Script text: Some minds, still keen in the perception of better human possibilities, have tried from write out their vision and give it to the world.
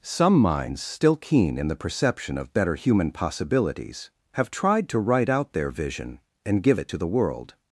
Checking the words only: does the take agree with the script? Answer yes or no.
no